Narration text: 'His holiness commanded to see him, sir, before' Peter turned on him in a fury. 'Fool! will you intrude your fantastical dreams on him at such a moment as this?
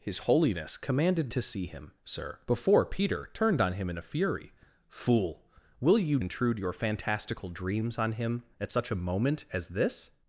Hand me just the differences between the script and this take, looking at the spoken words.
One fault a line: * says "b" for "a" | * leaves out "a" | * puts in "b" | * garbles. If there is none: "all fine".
all fine